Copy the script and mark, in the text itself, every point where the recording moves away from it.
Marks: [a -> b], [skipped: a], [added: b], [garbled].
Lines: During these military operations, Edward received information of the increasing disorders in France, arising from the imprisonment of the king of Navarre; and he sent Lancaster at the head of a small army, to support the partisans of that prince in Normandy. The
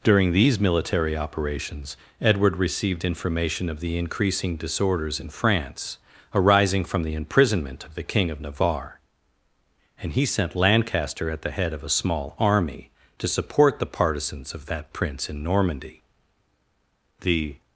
During these military operations, Edward received information of the increasing disorders in France, arising from the imprisonment of the king of Navarre; and he sent Lancaster at the head of a small army, to support the partisans of that prince in Normandy. The